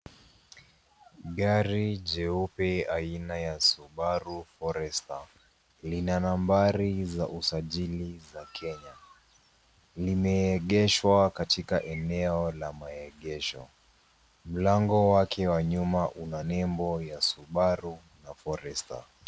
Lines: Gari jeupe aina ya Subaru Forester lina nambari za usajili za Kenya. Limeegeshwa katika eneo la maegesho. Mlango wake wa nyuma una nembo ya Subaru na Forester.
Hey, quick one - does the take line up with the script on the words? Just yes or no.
yes